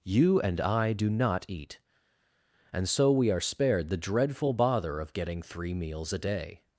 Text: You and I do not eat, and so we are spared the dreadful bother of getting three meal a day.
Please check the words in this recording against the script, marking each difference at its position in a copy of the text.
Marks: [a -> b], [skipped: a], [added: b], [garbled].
You and I do not eat, and so we are spared the dreadful bother of getting three [meal -> meals] a day.